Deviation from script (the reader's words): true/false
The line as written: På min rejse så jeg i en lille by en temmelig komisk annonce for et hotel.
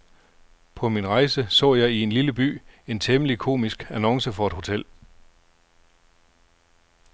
false